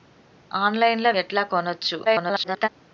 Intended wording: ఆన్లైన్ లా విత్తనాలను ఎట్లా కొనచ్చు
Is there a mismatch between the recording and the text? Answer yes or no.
yes